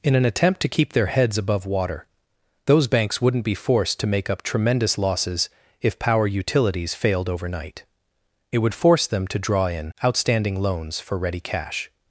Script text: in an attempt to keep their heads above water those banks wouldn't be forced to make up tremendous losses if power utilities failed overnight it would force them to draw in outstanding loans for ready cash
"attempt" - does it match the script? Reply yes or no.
yes